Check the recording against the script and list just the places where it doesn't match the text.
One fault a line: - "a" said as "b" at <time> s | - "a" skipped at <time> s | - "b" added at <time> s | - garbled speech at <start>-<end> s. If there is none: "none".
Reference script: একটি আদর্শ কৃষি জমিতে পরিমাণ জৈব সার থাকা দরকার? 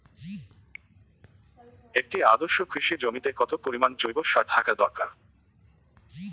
- "কত" added at 3.4 s